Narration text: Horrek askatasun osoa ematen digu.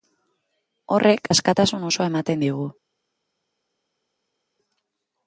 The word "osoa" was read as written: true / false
true